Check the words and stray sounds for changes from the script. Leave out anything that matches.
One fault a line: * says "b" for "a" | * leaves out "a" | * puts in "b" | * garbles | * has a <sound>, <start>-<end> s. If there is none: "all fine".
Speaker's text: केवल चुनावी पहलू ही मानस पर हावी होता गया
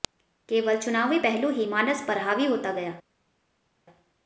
all fine